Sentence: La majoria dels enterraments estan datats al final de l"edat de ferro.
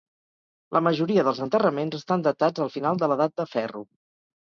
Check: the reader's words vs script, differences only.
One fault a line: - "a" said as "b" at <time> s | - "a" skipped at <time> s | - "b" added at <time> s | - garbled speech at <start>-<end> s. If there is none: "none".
none